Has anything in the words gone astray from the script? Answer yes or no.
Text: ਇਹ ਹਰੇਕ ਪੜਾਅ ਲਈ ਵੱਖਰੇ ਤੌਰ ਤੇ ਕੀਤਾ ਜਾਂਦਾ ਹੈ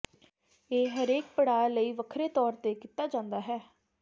no